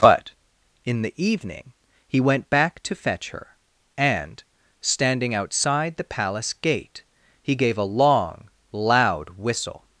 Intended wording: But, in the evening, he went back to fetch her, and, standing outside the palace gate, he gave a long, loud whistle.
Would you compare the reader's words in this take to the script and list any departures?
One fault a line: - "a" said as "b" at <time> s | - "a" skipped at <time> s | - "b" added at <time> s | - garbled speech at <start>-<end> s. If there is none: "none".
none